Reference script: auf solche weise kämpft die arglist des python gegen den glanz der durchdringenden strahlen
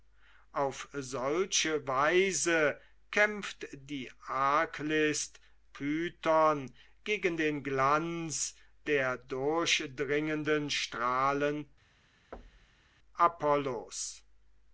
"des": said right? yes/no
no